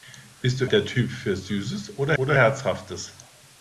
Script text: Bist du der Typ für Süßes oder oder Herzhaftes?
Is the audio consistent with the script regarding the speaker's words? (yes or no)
yes